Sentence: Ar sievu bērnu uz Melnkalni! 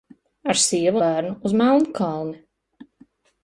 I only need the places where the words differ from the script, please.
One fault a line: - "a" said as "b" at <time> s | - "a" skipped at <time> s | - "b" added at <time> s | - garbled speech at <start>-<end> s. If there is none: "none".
none